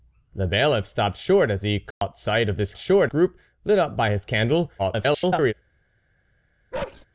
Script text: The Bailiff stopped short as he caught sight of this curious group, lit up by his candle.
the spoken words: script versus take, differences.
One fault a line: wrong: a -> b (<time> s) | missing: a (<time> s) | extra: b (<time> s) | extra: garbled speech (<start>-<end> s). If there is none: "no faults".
wrong: curious -> short (2.8 s)
extra: garbled speech (4.8-5.5 s)